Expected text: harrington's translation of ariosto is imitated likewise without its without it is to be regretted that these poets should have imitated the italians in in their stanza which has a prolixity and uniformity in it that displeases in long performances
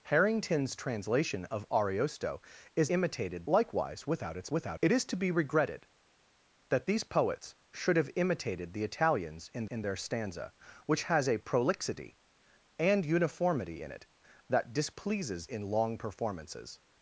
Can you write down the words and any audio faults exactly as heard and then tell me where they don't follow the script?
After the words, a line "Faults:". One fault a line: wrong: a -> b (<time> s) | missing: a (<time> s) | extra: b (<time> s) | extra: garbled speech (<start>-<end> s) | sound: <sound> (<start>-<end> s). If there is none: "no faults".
harrington's translation of ariosto is imitated likewise without its without it is to be regretted that these poets should have imitated the italians in in their stanza which has a prolixity and uniformity in it that displeases in long performances
Faults:
no faults